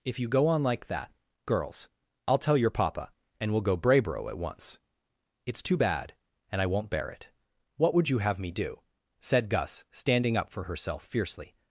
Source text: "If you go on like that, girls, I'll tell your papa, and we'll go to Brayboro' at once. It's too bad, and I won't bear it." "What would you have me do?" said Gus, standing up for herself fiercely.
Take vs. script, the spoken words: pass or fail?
fail